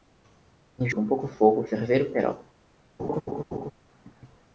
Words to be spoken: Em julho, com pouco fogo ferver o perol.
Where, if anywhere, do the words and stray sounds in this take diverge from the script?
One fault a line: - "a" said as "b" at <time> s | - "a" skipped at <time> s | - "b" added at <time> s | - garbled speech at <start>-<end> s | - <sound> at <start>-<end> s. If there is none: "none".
- "julho" skipped at 0.9 s
- laugh at 3.0-3.7 s